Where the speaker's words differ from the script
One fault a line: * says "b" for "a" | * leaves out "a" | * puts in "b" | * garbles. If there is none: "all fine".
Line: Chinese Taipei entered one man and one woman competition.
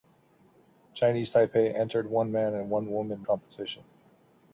all fine